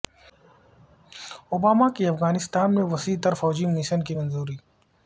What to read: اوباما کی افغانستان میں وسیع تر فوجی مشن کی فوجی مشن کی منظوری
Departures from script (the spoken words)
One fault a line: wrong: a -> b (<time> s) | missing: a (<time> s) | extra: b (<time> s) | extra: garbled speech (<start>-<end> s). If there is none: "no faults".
missing: فوجی مشن کی (4.1 s)